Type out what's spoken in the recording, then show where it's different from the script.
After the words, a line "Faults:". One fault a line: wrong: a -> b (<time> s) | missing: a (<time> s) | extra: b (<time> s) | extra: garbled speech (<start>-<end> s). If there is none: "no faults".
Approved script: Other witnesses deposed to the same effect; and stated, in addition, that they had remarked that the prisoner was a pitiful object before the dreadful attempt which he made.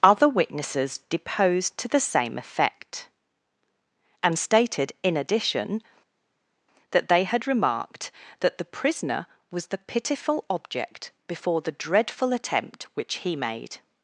Other witnesses deposed to the same effect; and stated, in addition, that they had remarked that the prisoner was the pitiful object before the dreadful attempt which he made.
Faults:
wrong: a -> the (9.7 s)